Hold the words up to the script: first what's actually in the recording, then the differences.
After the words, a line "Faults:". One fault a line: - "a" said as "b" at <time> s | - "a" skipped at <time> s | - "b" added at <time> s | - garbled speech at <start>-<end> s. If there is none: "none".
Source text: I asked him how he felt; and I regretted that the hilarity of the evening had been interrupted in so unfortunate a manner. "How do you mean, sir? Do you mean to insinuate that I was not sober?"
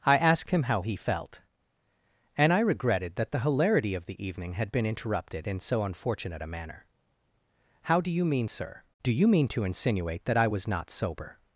I asked him how he felt; and I regretted that the hilarity of the evening had been interrupted in so unfortunate a manner. "How do you mean, sir? Do you mean to insinuate that I was not sober?"
Faults:
none